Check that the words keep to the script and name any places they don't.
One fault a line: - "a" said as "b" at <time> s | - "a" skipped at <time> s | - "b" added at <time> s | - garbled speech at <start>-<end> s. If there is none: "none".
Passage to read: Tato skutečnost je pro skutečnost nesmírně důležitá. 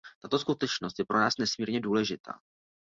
- "skutečnost" said as "nás" at 1.2 s